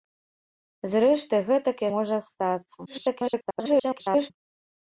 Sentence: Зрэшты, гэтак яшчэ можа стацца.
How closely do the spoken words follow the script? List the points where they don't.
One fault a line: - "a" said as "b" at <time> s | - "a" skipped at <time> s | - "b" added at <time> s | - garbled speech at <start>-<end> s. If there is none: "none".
- "яшчэ" skipped at 1.8 s
- garbled speech at 2.9-4.3 s